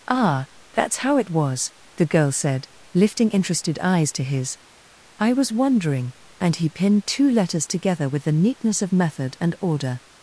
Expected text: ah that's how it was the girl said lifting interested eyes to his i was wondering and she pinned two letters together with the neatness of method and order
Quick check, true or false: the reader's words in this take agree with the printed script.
false